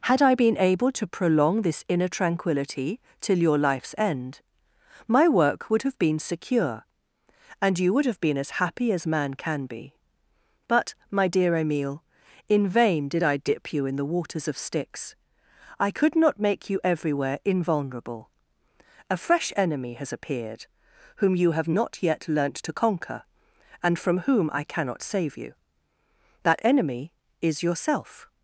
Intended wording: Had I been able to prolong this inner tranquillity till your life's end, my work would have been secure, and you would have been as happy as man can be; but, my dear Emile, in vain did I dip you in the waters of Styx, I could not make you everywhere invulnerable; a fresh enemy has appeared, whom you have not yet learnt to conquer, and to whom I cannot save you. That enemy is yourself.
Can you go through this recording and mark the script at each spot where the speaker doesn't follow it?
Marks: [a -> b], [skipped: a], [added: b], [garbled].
Had I been able to prolong this inner tranquillity till your life's end, my work would have been secure, and you would have been as happy as man can be; but, my dear Emile, in vain did I dip you in the waters of Styx, I could not make you everywhere invulnerable; a fresh enemy has appeared, whom you have not yet learnt to conquer, and [to -> from] whom I cannot save you. That enemy is yourself.